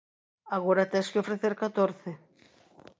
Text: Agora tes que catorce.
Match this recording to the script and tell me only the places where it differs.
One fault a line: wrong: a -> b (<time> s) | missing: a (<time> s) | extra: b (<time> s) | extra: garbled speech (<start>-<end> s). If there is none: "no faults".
extra: ofrecer (1.2 s)